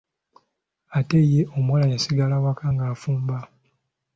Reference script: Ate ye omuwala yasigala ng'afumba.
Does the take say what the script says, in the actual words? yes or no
no